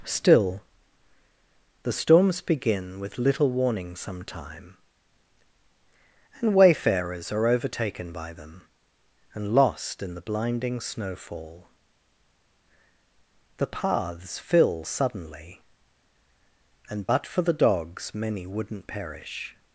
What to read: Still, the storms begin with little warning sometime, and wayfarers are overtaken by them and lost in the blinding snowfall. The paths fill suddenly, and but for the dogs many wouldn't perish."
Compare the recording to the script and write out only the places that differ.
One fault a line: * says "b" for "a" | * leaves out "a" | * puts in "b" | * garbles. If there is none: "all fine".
all fine